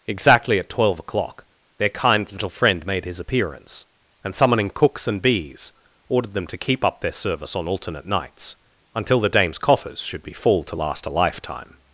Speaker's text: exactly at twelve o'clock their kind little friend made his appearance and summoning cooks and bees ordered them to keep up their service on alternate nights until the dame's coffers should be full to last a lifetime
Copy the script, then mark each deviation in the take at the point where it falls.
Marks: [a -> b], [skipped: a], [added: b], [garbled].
exactly at twelve o'clock their kind little friend made his appearance and summoning cooks and bees ordered them to keep up their service on alternate nights until the dame's coffers should be full to last a lifetime